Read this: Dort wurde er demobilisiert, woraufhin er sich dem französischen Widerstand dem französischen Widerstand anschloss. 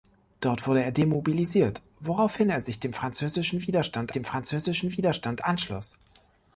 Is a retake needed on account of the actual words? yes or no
no